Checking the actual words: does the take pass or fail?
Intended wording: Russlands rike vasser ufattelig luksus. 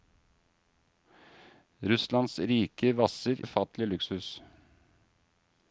pass